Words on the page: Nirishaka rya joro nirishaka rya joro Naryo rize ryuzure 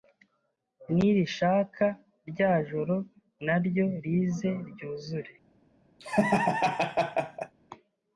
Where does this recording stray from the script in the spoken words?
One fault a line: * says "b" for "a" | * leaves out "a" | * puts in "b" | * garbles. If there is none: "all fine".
* leaves out "nirishaka rya joro"